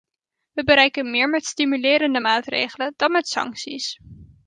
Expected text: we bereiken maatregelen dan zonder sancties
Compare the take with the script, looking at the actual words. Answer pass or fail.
fail